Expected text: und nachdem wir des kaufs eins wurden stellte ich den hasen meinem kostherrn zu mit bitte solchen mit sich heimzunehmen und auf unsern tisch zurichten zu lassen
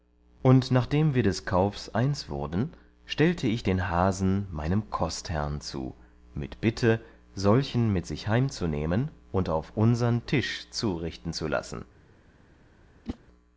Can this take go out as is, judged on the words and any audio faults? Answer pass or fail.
fail